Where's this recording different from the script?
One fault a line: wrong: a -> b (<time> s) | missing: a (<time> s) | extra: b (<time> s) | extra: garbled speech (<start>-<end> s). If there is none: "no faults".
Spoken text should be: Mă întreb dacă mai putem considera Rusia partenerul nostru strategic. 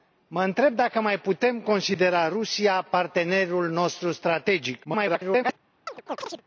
extra: garbled speech (4.8-5.6 s)